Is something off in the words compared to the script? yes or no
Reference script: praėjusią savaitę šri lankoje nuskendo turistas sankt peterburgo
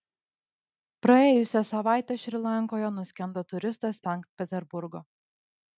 no